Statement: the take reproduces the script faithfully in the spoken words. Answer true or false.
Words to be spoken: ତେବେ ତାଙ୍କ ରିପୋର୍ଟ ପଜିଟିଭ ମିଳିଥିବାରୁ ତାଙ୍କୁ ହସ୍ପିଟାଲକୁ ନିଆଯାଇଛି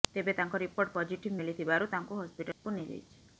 true